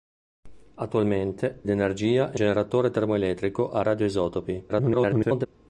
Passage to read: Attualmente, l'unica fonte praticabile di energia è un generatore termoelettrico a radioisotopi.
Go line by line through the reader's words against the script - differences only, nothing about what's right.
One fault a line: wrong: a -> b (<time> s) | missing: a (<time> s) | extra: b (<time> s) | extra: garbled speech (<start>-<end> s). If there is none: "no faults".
missing: l'unica fonte praticabile (1.6 s)
missing: un (2.4 s)
extra: garbled speech (4.7-5.5 s)